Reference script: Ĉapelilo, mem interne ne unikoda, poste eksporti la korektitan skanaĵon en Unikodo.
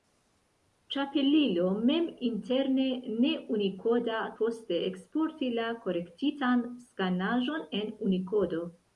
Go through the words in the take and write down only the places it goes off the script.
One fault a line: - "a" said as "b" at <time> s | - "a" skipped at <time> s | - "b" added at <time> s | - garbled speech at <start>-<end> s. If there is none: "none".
none